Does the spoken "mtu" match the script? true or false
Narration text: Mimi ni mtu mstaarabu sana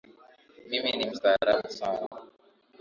false